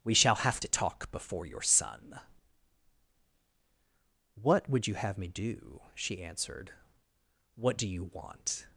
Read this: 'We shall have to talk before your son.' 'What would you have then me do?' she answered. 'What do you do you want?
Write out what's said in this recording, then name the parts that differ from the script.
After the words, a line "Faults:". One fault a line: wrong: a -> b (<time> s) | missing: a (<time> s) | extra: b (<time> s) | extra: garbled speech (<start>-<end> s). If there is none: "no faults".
'We shall have to talk before your son.' 'What would you have me do?' she answered. 'What do you want?
Faults:
missing: then (5.2 s)
missing: do you (8.1 s)